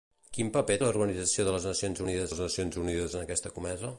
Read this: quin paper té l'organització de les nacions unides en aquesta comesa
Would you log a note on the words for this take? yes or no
yes